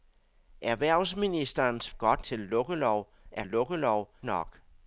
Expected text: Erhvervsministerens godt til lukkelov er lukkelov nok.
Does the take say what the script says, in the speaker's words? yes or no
yes